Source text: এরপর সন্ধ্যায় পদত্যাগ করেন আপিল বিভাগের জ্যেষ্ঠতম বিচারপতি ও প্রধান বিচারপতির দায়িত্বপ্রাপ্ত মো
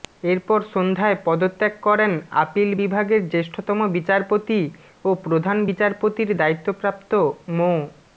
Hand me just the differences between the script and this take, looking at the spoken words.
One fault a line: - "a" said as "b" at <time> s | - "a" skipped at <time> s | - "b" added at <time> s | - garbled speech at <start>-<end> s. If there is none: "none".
none